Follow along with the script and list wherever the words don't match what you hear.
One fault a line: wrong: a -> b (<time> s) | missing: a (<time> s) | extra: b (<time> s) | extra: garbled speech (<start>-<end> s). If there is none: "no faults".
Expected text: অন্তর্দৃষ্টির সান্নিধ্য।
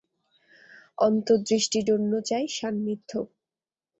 extra: জন্য চাই (1.8 s)